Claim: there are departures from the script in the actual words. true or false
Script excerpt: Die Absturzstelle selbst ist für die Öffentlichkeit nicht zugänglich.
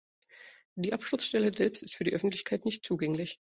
false